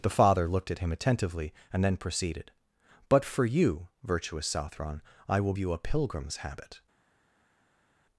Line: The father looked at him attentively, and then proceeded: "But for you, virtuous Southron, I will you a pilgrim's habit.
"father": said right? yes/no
yes